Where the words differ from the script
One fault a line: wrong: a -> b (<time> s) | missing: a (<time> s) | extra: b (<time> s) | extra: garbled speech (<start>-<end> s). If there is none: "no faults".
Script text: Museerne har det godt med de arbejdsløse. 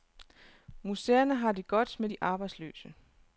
no faults